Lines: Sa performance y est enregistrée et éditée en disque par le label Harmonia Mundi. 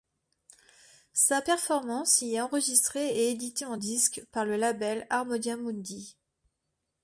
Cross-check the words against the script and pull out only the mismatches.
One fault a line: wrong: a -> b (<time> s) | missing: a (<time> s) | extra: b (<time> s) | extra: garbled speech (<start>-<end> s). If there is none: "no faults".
no faults